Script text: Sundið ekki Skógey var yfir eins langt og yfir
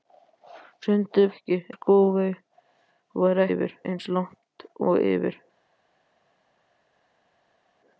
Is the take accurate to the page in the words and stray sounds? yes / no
yes